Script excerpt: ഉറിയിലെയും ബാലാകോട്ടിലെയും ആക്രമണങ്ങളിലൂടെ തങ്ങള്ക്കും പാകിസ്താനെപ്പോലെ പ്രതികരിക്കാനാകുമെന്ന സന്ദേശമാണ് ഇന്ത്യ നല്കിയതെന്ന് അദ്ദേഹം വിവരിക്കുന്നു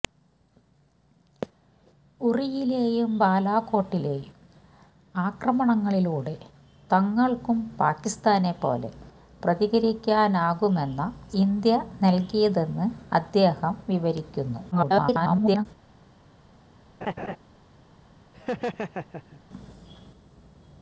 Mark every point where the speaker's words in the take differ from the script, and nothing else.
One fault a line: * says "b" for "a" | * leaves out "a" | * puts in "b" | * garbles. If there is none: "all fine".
* leaves out "സന്ദേശമാണ്"
* garbles